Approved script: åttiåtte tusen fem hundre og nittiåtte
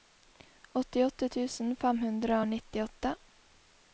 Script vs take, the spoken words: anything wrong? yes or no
no